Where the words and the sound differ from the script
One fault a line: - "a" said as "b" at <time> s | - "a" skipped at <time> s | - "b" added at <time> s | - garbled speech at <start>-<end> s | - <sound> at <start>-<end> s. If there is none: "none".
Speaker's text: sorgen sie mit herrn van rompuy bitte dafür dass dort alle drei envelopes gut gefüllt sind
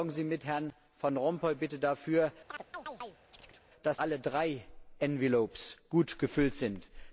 - chirp at 2.5-3.6 s
- "dort" skipped at 4.0 s